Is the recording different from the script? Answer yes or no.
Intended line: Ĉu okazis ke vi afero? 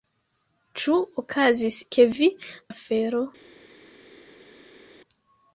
no